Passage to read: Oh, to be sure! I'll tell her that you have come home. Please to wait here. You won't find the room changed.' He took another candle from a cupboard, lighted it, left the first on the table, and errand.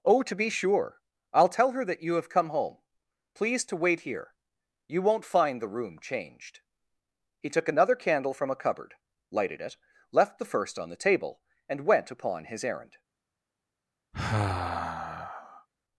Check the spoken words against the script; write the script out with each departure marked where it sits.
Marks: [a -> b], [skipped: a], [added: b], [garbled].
Oh, to be sure! I'll tell her that you have come home. Please to wait here. You won't find the room changed.' He took another candle from a cupboard, lighted it, left the first on the table, and [added: went upon his] errand.